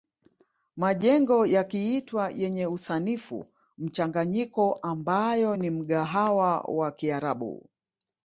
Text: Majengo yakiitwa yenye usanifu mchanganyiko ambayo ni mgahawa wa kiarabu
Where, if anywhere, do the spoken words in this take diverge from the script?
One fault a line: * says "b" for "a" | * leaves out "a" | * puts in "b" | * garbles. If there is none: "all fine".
all fine